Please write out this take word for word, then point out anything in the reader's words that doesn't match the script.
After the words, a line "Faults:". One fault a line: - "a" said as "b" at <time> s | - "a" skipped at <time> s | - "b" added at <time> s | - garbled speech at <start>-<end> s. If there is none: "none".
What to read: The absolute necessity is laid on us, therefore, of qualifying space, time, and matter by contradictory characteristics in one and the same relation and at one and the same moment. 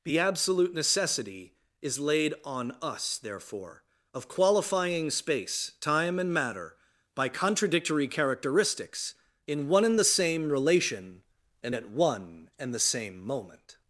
The absolute necessity is laid on us, therefore, of qualifying space, time, and matter by contradictory characteristics in one and the same relation and at one and the same moment.
Faults:
none